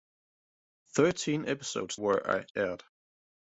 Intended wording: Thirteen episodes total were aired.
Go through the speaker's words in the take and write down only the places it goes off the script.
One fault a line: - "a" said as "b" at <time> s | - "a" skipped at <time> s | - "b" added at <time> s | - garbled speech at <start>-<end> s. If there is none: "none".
- "total" skipped at 2.0 s